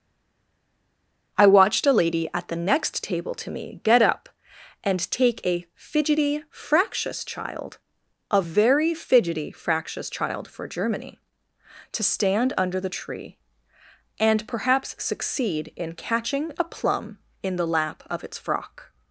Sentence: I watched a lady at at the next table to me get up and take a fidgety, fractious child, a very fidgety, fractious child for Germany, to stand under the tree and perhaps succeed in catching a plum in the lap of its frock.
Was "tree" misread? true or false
false